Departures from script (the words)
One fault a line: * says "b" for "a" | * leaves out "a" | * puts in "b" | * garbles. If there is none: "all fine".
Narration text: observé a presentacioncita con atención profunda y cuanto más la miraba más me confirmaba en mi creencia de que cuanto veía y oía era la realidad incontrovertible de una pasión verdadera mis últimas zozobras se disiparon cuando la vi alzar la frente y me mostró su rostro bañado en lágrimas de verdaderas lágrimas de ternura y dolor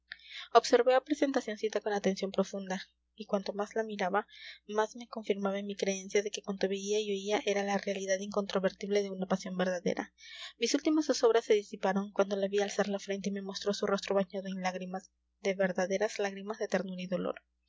all fine